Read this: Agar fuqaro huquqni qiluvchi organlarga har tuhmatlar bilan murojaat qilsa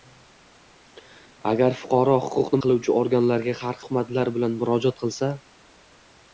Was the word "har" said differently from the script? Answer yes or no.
no